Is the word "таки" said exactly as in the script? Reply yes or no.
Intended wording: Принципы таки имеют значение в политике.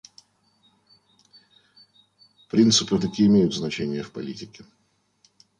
yes